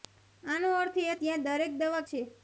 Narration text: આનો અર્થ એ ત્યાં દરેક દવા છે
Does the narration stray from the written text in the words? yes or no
no